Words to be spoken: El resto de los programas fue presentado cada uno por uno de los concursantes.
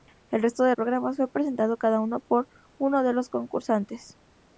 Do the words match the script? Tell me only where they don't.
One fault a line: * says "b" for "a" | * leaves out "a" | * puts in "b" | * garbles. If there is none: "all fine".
* leaves out "los"